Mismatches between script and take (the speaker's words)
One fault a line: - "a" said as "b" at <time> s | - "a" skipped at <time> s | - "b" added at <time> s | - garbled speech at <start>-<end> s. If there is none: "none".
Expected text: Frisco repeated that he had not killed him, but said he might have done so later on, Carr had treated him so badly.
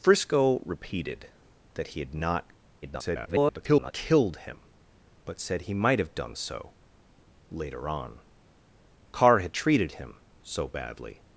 - garbled speech at 2.8-3.9 s